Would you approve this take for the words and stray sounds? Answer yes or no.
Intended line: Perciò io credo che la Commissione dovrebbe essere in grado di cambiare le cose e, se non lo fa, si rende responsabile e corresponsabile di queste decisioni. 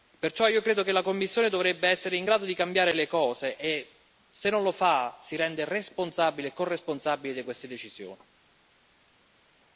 yes